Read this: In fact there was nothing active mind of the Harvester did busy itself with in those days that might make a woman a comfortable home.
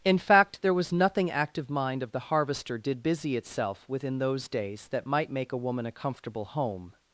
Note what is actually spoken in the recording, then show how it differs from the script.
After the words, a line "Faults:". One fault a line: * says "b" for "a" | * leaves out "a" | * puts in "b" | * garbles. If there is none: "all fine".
In fact there was nothing active mind of the Harvester did busy itself with in those days that might make a woman a comfortable home.
Faults:
all fine